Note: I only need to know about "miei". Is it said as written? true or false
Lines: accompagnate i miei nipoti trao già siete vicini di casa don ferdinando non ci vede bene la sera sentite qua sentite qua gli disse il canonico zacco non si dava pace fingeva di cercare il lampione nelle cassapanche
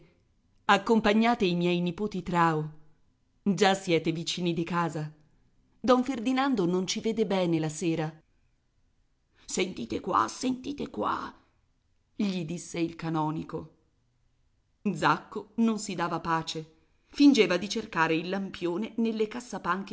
true